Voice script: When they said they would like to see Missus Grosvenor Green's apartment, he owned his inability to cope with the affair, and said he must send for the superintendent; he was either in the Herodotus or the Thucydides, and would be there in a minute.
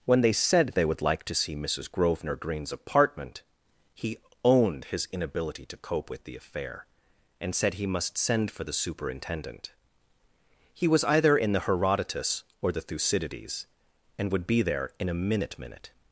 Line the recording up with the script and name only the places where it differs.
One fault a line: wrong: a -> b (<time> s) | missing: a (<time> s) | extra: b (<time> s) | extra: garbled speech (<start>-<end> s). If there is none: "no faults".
extra: minute (15.6 s)